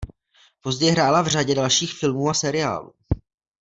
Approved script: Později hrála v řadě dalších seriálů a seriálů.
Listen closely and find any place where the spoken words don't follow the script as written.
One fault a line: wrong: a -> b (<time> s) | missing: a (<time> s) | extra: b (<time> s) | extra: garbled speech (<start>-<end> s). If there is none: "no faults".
wrong: seriálů -> filmů (1.9 s)